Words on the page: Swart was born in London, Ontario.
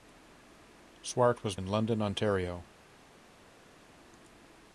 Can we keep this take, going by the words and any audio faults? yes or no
no